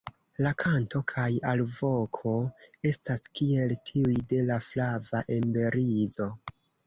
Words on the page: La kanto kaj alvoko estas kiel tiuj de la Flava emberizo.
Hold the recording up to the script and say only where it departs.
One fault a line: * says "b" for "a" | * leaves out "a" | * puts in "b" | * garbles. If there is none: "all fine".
all fine